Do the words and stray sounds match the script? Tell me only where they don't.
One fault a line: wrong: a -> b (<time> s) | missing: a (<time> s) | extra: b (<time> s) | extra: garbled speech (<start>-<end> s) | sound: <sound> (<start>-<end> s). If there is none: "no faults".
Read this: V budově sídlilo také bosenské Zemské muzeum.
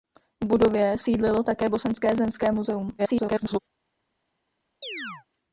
extra: garbled speech (3.0-3.6 s)
sound: chirp (4.8-5.3 s)